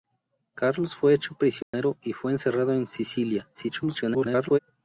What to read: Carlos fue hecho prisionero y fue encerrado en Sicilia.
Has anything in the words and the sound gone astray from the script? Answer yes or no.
yes